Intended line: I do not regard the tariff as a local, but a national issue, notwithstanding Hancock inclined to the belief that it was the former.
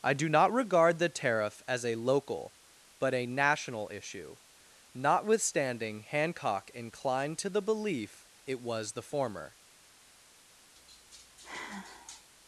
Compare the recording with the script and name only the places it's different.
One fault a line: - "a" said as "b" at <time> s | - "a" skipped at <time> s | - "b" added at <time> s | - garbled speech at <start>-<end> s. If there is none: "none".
- "that" skipped at 8.3 s